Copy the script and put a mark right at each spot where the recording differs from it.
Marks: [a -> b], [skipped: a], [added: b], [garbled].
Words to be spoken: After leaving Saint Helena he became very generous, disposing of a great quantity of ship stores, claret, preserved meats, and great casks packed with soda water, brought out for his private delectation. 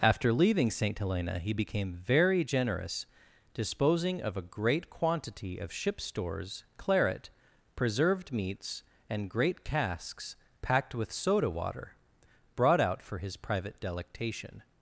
After leaving Saint Helena he became very generous, disposing of a great quantity of ship stores, claret, preserved meats, and great casks packed with soda water, brought out for his private delectation.